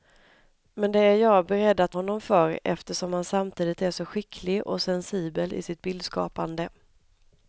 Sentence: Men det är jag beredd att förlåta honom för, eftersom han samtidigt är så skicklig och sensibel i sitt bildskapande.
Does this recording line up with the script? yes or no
no